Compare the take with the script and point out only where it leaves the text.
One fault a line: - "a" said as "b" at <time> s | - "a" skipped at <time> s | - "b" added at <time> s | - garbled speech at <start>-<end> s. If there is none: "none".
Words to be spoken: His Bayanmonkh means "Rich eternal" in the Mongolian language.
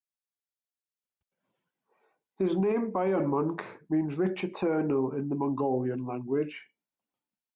- "name" added at 2.6 s